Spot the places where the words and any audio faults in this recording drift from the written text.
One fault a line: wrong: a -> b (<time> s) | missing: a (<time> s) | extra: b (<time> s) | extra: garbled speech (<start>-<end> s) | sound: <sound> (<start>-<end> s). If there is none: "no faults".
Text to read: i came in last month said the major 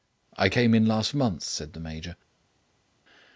no faults